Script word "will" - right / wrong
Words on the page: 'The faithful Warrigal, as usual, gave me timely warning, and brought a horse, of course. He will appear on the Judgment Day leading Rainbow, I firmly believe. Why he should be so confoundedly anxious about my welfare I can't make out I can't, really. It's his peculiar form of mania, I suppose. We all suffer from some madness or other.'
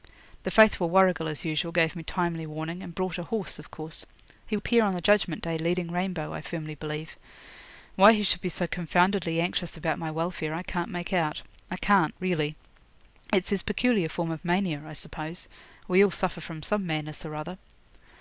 wrong